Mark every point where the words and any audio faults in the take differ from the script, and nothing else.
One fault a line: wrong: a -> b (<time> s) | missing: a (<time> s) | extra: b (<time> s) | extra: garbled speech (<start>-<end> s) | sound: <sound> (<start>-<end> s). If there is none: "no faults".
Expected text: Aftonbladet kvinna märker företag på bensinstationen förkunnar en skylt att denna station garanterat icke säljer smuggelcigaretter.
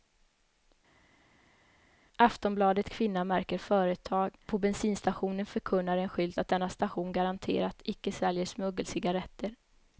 no faults